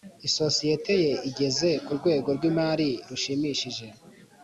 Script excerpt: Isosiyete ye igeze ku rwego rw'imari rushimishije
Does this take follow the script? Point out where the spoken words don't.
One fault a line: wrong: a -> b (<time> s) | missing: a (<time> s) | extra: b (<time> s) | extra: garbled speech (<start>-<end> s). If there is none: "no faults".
no faults